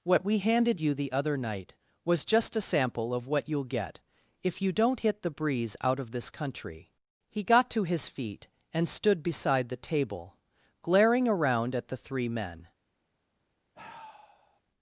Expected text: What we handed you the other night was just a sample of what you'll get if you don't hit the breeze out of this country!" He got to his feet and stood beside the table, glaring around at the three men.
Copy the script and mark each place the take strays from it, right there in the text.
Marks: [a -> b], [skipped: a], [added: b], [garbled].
What we handed you the other night was just a sample of what you'll get if you don't hit the breeze out of this country!" He got to his feet and stood beside the table, glaring around at the three men.